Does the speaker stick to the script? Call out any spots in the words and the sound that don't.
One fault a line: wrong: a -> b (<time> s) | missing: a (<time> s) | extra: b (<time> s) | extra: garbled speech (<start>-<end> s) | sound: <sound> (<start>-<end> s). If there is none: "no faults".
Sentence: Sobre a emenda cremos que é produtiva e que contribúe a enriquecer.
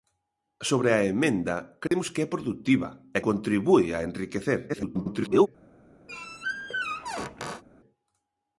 sound: dropout (1.9-1.9 s)
missing: que (3.2 s)
extra: garbled speech (4.7-5.5 s)
sound: squeak (6.1-7.6 s)